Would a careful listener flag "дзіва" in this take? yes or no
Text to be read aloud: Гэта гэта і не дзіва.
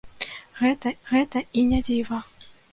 no